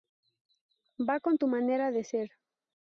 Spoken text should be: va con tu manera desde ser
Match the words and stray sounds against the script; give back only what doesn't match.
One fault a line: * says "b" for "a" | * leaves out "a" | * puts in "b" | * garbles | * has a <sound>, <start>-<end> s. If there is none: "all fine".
* says "de" for "desde"